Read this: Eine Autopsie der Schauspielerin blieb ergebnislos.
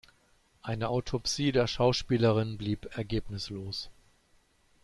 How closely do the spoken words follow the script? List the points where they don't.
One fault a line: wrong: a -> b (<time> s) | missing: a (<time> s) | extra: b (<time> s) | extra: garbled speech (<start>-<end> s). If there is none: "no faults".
no faults